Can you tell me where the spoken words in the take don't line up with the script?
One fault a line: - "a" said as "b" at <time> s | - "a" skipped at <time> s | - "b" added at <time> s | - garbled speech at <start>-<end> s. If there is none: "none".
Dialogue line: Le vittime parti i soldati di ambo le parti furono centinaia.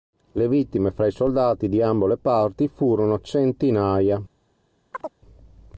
- "parti" said as "fra" at 0.9 s